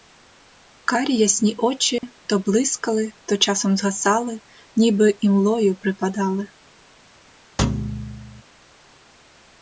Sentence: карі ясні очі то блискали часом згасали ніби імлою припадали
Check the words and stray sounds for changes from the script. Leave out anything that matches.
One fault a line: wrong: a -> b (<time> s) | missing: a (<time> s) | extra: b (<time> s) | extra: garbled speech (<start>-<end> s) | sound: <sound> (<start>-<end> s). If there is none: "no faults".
sound: dropout (2.0-2.0 s)
extra: то (3.2 s)
sound: thud (7.6-8.4 s)